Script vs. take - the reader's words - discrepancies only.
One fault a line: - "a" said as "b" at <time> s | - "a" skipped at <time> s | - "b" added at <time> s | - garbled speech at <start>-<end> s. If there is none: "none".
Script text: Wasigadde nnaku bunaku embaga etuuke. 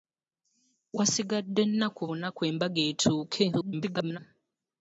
- garbled speech at 3.5-4.2 s